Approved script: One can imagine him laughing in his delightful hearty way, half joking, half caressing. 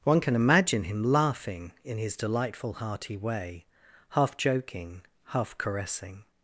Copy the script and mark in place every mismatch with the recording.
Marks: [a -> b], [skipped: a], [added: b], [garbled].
One can imagine him laughing in his delightful hearty way, half joking, half caressing.